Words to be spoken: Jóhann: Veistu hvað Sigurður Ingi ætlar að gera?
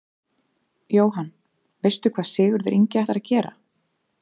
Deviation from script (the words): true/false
false